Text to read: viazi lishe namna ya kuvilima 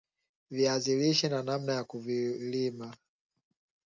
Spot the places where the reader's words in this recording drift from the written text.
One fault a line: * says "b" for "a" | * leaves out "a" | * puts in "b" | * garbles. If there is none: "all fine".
* puts in "na"